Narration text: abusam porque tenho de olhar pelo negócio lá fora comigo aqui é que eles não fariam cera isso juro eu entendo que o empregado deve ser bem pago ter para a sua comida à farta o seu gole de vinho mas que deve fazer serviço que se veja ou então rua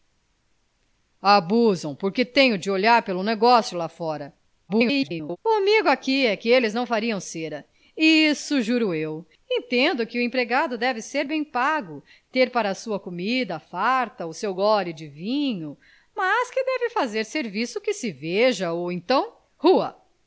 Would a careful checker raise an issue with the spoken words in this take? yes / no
yes